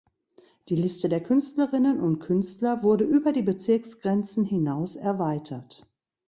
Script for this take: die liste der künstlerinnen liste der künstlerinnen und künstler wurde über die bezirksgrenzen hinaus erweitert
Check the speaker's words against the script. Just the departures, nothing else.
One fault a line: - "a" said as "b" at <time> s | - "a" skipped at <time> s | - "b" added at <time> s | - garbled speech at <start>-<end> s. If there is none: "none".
- "liste der künstlerinnen" skipped at 2.0 s